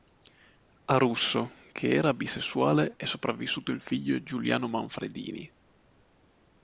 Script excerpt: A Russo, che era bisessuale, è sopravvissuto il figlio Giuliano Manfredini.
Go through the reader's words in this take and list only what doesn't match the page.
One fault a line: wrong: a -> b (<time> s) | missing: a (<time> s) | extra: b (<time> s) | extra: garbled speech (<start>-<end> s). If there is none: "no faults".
no faults